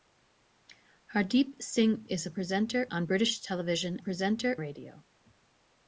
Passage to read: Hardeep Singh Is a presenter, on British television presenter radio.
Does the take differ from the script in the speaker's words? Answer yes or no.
no